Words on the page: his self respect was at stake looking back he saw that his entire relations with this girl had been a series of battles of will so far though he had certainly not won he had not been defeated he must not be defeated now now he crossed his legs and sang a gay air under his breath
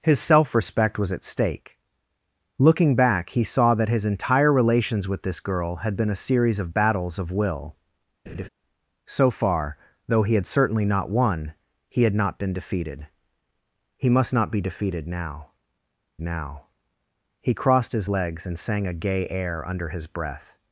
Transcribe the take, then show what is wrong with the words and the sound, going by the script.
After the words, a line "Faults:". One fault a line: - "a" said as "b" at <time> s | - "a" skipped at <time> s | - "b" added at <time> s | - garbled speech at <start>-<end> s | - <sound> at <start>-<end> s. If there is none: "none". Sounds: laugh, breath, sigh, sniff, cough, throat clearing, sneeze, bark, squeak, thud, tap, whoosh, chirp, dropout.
his self respect was at stake looking back he saw that his entire relations with this girl had been a series of battles of will so far though he had certainly not won he had not been defeated he must not be defeated now now he crossed his legs and sang a gay air under his breath
Faults:
- laugh at 8.3-8.5 s